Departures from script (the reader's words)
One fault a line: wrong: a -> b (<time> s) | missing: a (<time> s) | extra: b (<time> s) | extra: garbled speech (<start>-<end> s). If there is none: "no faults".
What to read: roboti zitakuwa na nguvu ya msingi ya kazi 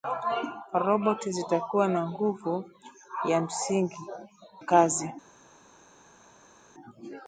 missing: ya (4.0 s)